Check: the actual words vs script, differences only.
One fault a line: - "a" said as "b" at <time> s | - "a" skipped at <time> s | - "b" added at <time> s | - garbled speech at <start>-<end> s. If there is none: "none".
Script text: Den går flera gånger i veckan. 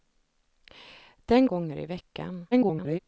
- "går flera" skipped at 1.5 s
- garbled speech at 2.5-3.0 s